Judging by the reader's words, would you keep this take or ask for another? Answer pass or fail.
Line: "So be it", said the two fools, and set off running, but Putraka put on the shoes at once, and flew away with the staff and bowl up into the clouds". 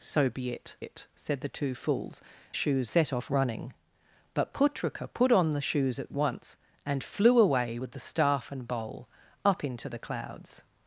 fail